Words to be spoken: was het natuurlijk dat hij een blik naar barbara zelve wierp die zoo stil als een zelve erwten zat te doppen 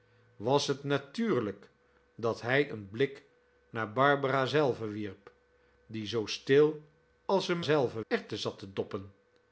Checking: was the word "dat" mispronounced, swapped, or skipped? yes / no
no